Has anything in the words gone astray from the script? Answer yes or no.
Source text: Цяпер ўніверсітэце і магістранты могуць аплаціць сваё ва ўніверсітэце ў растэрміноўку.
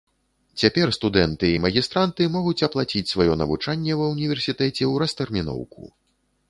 yes